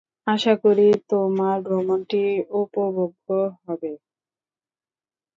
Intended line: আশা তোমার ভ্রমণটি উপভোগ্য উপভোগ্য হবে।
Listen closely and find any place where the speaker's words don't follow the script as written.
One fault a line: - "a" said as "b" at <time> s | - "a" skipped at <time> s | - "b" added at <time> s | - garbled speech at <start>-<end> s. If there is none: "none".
- "করি" added at 0.6 s
- "উপভোগ্য" skipped at 3.3 s